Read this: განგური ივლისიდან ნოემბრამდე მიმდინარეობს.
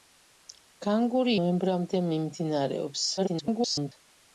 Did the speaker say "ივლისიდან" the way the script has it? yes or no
no